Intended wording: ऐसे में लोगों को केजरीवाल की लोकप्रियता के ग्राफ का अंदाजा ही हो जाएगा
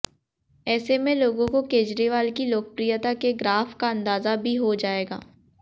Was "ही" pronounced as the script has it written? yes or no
no